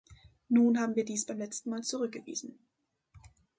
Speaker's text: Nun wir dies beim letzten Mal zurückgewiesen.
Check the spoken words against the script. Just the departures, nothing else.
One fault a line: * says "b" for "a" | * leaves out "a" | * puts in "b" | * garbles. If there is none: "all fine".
* puts in "haben"